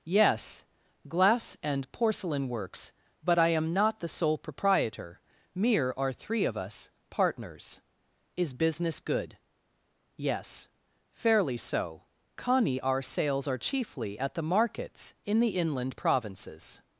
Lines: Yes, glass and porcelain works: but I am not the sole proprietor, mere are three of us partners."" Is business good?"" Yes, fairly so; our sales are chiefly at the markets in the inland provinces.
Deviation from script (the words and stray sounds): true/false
true